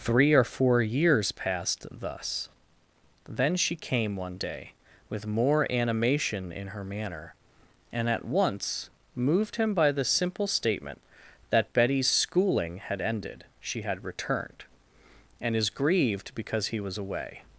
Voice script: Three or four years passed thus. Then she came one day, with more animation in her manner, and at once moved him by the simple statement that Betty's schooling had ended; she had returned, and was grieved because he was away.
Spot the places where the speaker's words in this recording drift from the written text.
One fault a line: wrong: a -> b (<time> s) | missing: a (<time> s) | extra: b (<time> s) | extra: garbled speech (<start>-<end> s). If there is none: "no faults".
wrong: was -> is (15.5 s)